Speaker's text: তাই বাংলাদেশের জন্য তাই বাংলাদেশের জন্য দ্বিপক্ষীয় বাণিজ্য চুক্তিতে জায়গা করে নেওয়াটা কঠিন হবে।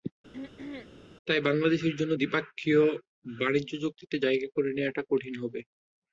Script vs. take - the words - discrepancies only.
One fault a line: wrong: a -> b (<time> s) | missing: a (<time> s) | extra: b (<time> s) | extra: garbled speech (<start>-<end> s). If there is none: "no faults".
missing: তাই বাংলাদেশের জন্য (2.1 s)